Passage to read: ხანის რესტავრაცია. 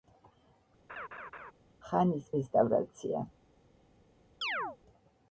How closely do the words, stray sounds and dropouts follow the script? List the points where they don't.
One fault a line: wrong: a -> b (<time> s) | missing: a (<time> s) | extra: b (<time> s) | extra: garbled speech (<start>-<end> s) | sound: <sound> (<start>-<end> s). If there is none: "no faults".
sound: laugh (0.9-1.5 s)
sound: chirp (4.4-4.8 s)